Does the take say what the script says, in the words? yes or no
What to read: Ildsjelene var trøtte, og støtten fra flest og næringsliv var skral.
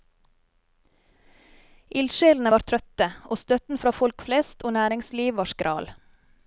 no